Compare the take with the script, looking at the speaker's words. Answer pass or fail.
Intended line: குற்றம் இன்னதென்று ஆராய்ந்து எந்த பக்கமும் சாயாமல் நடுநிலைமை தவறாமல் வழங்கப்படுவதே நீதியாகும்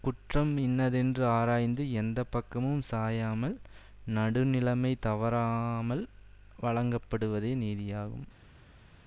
pass